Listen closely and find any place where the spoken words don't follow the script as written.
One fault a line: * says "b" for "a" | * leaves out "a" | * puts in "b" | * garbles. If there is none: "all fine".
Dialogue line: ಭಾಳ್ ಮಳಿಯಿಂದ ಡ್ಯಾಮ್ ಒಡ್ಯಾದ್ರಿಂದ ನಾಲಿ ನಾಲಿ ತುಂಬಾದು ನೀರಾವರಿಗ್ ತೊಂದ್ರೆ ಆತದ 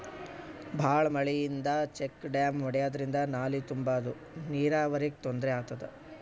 * puts in "ಚೆಕ್"
* leaves out "ನಾಲಿ"